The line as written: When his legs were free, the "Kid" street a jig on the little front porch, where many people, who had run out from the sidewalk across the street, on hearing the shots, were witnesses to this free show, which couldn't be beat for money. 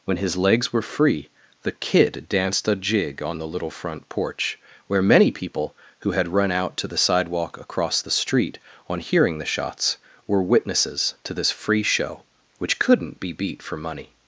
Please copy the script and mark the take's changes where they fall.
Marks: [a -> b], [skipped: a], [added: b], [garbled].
When his legs were free, the "Kid" [street -> danced] a jig on the little front porch, where many people, who had run out [from -> to] the sidewalk across the street, on hearing the shots, were witnesses to this free show, which couldn't be beat for money.